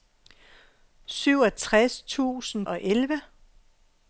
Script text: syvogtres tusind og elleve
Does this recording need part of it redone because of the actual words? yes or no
no